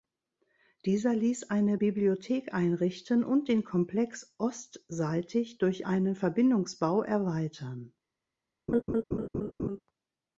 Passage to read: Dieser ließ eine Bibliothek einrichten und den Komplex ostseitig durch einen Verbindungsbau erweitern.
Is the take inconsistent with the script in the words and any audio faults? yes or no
yes